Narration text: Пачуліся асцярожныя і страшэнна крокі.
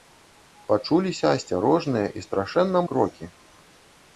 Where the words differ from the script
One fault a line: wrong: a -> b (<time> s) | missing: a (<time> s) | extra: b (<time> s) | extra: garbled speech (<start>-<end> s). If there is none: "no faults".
no faults